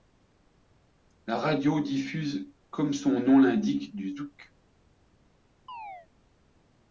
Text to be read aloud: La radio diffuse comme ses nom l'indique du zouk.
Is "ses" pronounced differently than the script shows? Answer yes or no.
yes